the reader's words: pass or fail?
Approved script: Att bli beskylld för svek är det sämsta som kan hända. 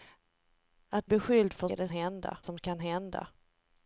fail